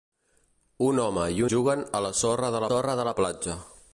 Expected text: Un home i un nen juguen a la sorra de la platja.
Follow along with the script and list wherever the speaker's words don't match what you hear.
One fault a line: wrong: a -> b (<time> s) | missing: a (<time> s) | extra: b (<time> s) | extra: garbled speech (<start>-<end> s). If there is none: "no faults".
missing: un nen (1.4 s)
extra: sorra de (2.7 s)